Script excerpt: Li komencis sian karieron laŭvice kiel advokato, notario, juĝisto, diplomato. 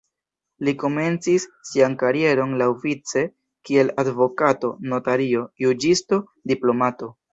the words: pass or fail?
pass